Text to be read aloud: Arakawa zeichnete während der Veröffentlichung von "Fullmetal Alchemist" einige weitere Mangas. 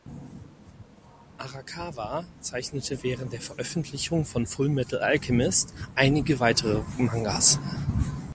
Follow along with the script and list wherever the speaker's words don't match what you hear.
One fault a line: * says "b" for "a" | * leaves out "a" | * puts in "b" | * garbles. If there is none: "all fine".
all fine